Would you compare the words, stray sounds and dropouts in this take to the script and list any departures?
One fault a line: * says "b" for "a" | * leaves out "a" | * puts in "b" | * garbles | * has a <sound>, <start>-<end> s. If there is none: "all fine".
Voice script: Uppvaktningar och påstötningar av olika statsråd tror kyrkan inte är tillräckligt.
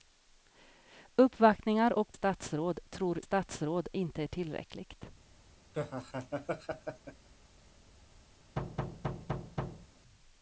* leaves out "påstötningar av olika"
* says "statsråd" for "kyrkan"
* has a laugh, 5.7-7.3 s
* has a thud, 8.6-9.9 s